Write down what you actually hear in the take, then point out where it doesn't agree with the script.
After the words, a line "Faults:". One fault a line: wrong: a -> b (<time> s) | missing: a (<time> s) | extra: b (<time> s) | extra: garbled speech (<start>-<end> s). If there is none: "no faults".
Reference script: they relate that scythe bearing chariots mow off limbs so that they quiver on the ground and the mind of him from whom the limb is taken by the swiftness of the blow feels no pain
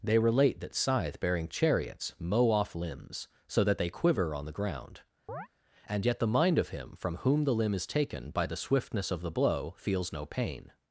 they relate that scythe bearing chariots mow off limbs so that they quiver on the ground and yet the mind of him from whom the limb is taken by the swiftness of the blow feels no pain
Faults:
extra: yet (6.0 s)